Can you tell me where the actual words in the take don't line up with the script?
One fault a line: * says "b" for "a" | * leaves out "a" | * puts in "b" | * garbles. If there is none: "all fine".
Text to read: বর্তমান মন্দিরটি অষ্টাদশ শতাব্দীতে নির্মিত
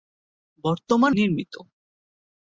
* leaves out "মন্দিরটি অষ্টাদশ শতাব্দীতে"